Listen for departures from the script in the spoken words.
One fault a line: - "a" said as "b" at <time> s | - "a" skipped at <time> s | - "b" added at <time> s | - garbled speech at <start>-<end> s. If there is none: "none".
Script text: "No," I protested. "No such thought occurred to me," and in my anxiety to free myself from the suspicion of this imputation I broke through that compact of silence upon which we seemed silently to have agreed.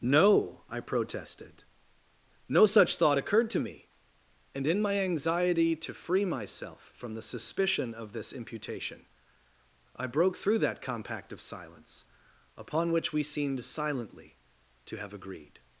none